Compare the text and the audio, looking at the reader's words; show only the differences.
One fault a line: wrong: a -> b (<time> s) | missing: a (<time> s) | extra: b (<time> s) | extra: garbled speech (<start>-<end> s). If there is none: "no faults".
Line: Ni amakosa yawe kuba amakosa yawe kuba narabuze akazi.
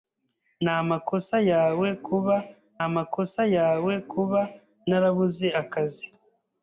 no faults